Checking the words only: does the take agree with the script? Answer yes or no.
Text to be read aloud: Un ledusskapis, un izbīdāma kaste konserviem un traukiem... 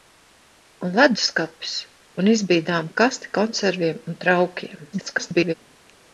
no